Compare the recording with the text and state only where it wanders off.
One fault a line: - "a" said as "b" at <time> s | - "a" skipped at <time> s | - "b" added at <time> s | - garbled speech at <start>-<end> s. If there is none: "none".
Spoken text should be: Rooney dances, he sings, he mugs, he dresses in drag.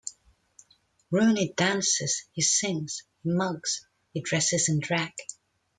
none